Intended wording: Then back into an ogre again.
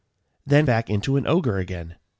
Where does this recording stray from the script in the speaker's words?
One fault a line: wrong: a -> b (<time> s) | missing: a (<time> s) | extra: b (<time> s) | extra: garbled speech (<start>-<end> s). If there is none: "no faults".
no faults